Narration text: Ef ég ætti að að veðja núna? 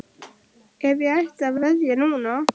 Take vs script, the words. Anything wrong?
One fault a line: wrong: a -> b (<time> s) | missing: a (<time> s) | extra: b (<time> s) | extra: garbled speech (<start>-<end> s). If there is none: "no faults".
no faults